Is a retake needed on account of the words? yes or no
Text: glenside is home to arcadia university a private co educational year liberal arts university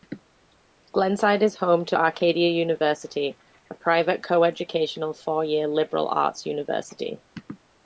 yes